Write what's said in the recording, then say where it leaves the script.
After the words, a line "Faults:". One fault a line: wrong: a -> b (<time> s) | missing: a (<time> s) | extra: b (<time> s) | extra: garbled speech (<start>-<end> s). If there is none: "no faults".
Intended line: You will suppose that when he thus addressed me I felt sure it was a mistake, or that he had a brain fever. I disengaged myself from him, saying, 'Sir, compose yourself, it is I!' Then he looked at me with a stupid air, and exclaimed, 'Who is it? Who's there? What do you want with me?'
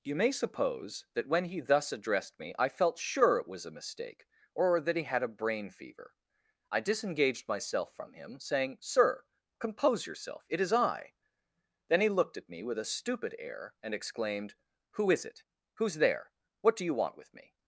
You may suppose that when he thus addressed me I felt sure it was a mistake, or that he had a brain fever. I disengaged myself from him, saying, 'Sir, compose yourself, it is I!' Then he looked at me with a stupid air, and exclaimed, 'Who is it? Who's there? What do you want with me?'
Faults:
wrong: will -> may (0.1 s)